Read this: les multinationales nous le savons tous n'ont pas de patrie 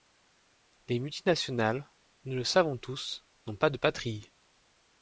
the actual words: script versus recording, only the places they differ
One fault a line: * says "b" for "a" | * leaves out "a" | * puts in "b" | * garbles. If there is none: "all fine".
all fine